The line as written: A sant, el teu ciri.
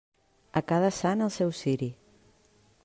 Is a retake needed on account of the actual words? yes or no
yes